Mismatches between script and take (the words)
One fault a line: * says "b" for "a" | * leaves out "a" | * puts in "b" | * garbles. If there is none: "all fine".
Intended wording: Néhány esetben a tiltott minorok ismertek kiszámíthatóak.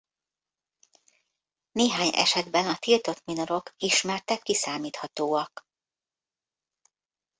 all fine